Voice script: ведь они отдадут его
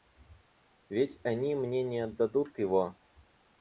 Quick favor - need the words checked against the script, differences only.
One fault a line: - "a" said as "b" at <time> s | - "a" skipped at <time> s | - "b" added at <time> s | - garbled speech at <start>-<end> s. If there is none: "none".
- "мне не" added at 1.6 s